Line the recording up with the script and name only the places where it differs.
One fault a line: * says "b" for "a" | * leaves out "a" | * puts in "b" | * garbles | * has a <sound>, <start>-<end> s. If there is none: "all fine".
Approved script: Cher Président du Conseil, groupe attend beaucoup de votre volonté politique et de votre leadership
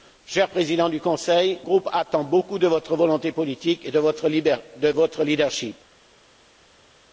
all fine